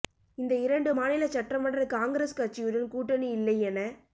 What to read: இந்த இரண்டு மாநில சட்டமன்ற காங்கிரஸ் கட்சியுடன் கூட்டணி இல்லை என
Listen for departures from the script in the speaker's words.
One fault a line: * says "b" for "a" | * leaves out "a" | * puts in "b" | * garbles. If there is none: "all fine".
all fine